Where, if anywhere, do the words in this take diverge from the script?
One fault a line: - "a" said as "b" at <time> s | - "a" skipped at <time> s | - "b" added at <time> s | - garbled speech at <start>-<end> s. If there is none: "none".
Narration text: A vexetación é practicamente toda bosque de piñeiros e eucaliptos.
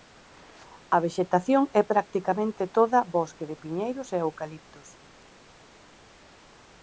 none